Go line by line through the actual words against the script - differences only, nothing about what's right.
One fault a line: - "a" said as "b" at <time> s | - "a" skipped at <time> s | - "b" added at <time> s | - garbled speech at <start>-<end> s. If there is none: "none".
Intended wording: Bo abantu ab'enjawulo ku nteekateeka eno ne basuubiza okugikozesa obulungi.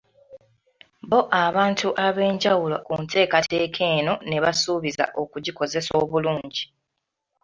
none